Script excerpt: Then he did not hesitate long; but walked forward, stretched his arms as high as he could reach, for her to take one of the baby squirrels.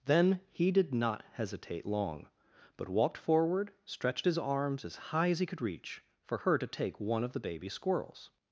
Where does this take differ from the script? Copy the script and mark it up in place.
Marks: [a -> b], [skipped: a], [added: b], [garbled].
Then he did not hesitate long; but walked forward, stretched his arms as high as he could reach, for her to take one of the baby squirrels.